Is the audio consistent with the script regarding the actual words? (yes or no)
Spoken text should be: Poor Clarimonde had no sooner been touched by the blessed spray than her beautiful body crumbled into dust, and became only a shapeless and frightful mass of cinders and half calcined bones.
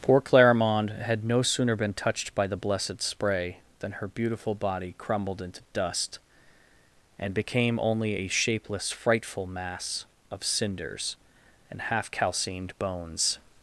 no